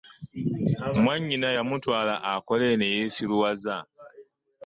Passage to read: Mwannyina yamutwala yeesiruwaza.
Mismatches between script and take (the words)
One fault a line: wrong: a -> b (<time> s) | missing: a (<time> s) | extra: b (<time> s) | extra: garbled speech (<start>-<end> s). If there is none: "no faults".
extra: akole ne (2.3 s)